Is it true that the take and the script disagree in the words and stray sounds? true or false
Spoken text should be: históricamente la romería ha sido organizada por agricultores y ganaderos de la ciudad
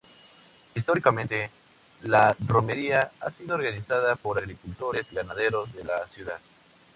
false